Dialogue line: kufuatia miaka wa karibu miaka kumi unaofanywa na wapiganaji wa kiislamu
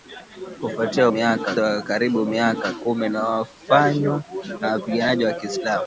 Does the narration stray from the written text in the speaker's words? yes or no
no